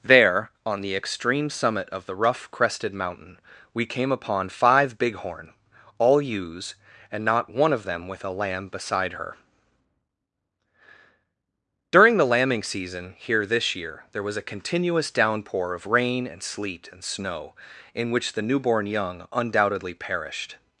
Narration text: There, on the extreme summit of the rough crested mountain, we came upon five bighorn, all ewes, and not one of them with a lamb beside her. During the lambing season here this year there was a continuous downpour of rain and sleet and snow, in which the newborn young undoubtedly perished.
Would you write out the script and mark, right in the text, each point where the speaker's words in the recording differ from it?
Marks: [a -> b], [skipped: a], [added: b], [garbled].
There, on the extreme summit of the rough crested mountain, we came upon five bighorn, all ewes, and not one of them with a lamb beside her. During the lambing season here this year there was a continuous downpour of rain and sleet and snow, in which the newborn young undoubtedly perished.